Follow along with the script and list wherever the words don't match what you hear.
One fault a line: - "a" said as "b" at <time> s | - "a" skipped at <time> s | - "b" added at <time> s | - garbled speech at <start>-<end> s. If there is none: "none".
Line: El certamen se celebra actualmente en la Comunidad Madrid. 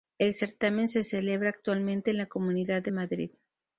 - "de" added at 2.8 s